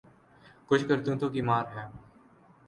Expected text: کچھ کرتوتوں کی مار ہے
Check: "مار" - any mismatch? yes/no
no